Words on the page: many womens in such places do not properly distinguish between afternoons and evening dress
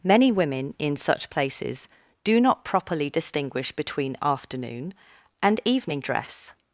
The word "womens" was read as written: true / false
false